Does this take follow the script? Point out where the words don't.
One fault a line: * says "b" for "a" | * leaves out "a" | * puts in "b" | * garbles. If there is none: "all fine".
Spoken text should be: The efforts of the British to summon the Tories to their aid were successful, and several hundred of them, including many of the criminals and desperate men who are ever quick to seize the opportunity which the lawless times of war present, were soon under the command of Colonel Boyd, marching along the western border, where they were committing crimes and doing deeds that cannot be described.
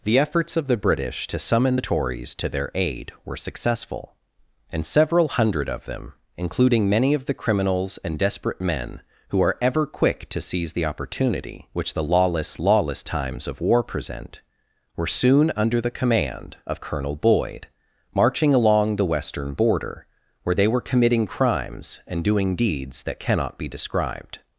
* puts in "lawless"